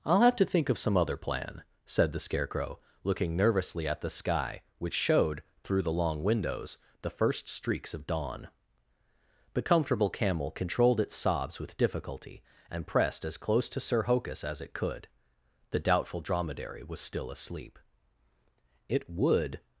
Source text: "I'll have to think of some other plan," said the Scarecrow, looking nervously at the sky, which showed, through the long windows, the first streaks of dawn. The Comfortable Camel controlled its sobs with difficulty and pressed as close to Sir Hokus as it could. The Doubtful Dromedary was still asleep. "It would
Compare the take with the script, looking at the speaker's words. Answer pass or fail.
pass